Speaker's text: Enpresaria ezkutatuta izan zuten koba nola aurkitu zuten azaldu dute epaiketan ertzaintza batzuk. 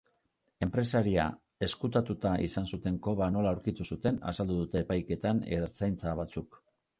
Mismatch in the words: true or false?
false